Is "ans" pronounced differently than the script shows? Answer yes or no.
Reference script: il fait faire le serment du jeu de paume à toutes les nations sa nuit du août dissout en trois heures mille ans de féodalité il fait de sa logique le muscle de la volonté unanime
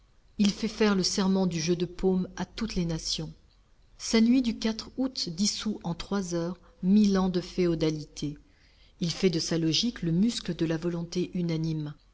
no